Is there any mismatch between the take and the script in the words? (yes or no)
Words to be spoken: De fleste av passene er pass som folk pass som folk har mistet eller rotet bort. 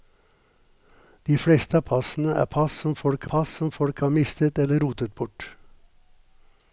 no